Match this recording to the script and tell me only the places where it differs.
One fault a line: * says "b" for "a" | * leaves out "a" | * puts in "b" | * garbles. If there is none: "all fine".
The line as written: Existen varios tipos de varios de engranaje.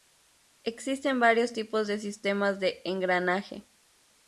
* says "sistemas" for "varios"